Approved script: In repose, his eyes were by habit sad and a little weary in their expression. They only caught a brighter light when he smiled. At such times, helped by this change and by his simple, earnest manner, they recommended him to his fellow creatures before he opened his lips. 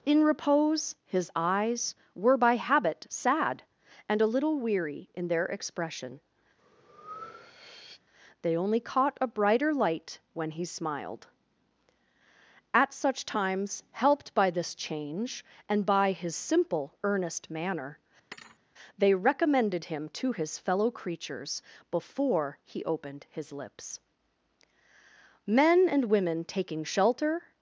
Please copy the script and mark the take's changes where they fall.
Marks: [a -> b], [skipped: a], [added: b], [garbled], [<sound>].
In repose, his eyes were by habit sad and a little weary in their expression. [breath] They only caught a brighter light when he smiled. At such times, helped by this change and by his simple, earnest manner, [thud] they recommended him to his fellow creatures before he opened his lips. [added: Men and women taking shelter]